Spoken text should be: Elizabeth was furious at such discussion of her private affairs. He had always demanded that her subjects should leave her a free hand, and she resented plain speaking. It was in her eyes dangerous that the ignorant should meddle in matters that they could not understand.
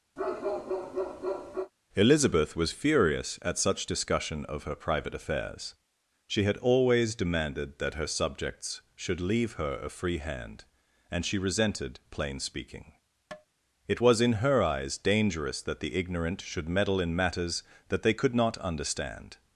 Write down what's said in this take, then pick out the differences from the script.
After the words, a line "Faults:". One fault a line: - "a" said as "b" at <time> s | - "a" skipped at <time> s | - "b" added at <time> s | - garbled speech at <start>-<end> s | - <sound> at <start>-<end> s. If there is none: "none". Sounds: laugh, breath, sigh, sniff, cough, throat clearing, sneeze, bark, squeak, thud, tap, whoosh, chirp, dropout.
Elizabeth was furious at such discussion of her private affairs. She had always demanded that her subjects should leave her a free hand, and she resented plain speaking. It was in her eyes dangerous that the ignorant should meddle in matters that they could not understand.
Faults:
- bark at 0.2-1.7 s
- "He" said as "She" at 6.3 s
- tap at 13.3-13.5 s